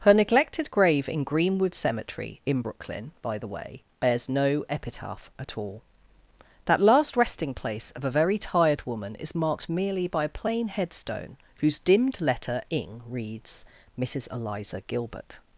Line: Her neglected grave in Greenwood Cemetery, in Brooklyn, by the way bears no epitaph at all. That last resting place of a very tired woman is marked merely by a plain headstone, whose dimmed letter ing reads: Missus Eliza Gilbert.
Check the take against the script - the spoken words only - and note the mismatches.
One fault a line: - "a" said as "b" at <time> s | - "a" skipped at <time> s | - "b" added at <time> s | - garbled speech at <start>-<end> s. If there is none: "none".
none